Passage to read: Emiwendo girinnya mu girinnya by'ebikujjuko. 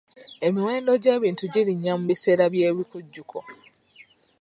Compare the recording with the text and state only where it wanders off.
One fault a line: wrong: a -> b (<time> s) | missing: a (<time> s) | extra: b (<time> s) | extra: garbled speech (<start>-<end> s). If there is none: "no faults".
extra: gy'ebintu (1.0 s)
wrong: girinnya -> biseera (2.1 s)